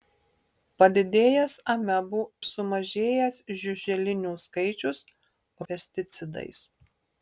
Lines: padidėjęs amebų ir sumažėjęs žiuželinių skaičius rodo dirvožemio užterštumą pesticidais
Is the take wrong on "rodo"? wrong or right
wrong